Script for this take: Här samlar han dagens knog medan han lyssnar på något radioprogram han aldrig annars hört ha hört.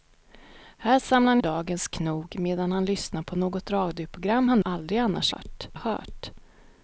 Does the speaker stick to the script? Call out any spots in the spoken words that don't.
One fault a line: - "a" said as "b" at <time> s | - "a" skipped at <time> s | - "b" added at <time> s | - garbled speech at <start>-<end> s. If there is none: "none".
none